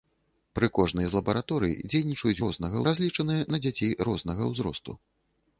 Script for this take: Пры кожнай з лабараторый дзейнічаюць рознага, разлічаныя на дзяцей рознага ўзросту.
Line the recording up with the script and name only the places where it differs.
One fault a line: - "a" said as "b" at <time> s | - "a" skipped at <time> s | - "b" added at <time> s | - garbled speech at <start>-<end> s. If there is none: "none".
none